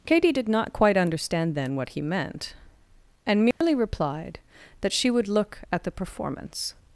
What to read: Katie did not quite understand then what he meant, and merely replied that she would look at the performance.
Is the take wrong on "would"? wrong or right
right